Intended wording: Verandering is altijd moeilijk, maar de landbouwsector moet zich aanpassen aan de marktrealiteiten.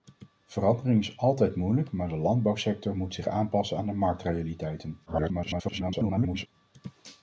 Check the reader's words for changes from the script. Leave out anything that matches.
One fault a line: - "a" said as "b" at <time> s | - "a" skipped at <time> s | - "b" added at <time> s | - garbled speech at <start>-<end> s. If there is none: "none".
- garbled speech at 5.1-6.5 s